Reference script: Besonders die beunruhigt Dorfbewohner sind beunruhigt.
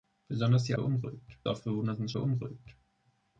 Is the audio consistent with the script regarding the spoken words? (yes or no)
yes